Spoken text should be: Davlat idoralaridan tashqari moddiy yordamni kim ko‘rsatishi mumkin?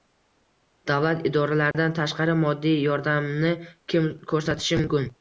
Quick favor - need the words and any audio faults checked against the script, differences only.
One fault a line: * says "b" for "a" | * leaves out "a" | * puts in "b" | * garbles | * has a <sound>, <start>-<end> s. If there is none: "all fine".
* has a dropout, 1.7-1.7 s